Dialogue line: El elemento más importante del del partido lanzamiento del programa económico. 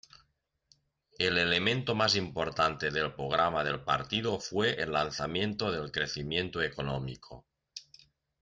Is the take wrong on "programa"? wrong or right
wrong